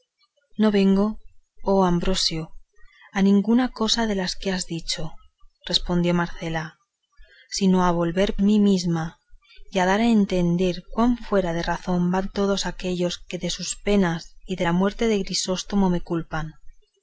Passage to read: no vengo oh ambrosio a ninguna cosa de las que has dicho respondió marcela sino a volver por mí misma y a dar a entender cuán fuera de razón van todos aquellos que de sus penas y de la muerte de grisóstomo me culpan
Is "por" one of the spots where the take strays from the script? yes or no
yes